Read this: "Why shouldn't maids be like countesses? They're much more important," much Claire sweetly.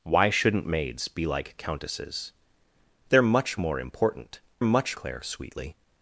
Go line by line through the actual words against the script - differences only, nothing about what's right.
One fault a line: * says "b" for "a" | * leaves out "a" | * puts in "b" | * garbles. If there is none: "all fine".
all fine